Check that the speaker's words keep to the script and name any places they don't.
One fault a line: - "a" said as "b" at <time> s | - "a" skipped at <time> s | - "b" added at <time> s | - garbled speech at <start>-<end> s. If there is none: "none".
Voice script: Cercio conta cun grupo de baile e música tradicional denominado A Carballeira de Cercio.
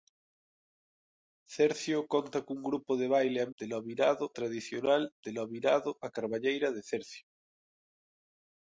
- "música" said as "denominado" at 3.6 s